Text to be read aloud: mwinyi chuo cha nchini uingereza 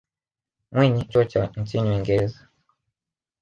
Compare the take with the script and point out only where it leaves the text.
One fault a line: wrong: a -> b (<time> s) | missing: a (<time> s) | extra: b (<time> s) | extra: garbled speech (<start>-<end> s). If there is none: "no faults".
no faults